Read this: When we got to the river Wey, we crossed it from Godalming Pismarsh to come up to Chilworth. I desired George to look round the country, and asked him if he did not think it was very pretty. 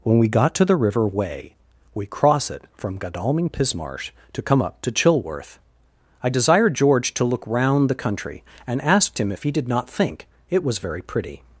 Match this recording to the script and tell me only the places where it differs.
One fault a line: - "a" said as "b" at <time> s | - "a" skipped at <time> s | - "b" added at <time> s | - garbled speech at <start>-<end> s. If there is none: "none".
- "crossed" said as "cross" at 2.1 s